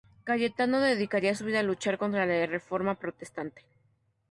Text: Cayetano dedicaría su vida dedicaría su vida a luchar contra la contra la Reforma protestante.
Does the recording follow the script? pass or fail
fail